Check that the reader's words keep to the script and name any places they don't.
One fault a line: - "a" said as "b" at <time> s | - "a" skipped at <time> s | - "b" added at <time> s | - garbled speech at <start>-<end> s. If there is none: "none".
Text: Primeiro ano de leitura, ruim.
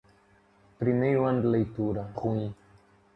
none